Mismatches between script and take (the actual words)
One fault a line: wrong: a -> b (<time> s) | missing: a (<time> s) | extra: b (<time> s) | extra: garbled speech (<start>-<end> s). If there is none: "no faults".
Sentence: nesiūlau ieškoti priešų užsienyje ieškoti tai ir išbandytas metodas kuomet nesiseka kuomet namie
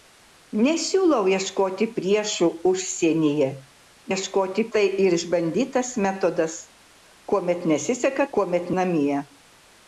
no faults